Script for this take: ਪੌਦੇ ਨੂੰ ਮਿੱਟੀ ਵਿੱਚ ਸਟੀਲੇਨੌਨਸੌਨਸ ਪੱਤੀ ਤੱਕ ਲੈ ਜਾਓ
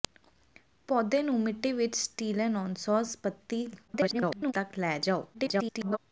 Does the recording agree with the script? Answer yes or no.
no